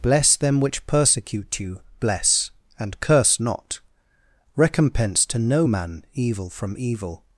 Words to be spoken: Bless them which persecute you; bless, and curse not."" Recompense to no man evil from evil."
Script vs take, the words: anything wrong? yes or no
no